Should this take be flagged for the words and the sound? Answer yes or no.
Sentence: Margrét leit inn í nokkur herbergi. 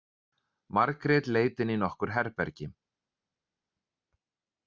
no